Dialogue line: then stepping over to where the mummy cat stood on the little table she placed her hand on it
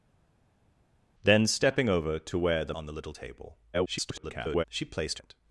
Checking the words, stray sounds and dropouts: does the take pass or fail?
fail